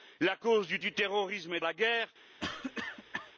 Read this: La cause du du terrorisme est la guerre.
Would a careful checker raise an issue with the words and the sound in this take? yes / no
yes